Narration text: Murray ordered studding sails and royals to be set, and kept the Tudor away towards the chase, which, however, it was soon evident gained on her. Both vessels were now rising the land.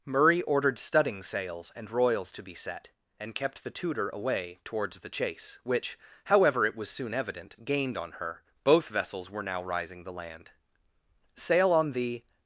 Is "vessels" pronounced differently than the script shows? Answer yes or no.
no